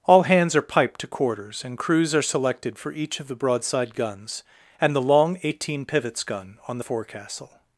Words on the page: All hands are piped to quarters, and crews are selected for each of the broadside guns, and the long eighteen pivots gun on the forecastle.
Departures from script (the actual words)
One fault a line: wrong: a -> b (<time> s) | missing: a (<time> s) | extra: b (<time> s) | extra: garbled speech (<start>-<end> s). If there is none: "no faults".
no faults